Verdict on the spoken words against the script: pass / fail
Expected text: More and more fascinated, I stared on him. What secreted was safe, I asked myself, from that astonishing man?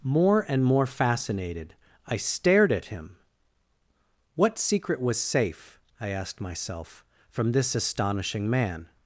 fail